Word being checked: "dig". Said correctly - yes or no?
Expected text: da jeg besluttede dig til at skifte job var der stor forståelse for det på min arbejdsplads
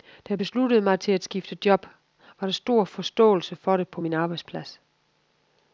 no